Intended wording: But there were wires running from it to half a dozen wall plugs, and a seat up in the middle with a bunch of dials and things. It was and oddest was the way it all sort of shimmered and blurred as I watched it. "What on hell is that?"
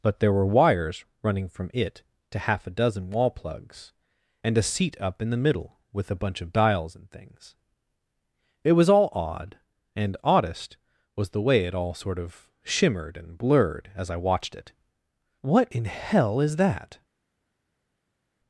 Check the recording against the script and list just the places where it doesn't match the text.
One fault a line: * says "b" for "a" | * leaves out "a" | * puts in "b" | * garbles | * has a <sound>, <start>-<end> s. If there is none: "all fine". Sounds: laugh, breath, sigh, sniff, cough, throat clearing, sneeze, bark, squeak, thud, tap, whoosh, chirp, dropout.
* puts in "all odd"
* says "in" for "on"